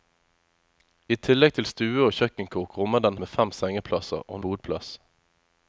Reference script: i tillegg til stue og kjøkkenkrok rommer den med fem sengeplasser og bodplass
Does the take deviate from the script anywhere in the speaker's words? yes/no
no